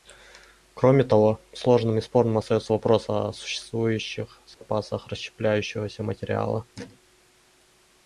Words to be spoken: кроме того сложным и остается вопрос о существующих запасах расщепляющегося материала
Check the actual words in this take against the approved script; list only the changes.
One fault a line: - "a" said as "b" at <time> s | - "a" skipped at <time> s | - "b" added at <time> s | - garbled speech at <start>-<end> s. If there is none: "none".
- "спорным" added at 2.0 s